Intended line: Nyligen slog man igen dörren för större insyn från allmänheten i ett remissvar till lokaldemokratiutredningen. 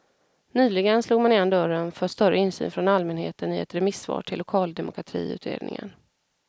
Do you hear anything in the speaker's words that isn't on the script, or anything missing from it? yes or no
no